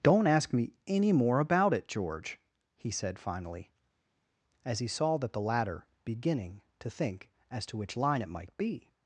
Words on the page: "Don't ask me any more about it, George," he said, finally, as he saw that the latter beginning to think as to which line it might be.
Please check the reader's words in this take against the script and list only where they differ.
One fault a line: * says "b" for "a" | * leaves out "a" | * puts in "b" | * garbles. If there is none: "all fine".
all fine